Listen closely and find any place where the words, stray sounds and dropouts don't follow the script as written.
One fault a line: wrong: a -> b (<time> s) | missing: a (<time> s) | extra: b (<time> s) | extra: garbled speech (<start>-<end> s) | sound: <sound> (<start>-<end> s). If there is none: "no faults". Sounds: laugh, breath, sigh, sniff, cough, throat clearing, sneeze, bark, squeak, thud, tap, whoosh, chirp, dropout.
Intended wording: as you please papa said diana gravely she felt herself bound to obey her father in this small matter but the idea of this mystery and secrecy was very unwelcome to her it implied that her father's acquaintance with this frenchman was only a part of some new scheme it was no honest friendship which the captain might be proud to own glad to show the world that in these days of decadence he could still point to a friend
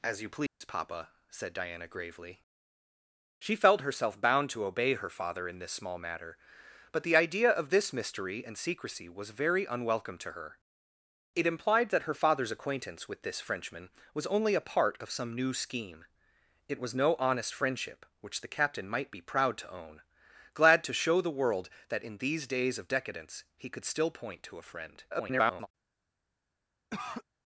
sound: dropout (0.5-0.6 s)
extra: garbled speech (25.1-25.7 s)
sound: cough (26.9-27.2 s)